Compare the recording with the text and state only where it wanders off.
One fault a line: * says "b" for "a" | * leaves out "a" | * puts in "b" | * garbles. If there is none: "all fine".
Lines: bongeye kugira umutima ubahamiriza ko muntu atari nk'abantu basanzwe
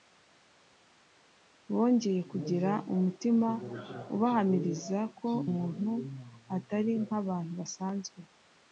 all fine